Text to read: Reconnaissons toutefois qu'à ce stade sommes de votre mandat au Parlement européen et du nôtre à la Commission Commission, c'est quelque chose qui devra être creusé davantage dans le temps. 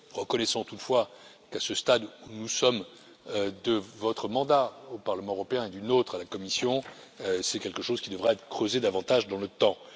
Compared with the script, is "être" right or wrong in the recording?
right